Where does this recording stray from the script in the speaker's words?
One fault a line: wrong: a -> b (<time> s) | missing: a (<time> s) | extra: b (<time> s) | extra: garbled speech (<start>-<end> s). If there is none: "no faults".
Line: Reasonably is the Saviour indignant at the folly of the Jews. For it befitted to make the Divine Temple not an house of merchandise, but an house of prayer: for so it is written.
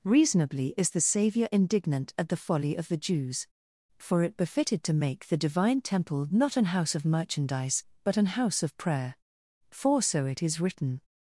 no faults